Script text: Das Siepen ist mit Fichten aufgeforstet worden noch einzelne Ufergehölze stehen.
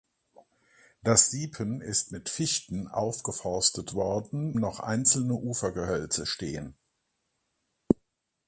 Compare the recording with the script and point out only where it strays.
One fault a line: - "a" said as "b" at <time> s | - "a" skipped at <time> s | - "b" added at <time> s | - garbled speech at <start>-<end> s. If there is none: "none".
none